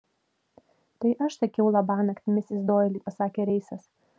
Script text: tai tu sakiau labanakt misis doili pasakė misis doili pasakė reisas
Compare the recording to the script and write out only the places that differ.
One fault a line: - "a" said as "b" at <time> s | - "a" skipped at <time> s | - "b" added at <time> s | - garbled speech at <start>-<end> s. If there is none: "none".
- "tu" said as "aš" at 1.2 s
- "misis doili pasakė" skipped at 3.5 s